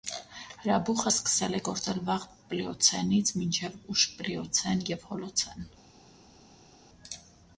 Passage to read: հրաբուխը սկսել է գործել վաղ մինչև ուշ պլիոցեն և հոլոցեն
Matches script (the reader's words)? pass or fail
fail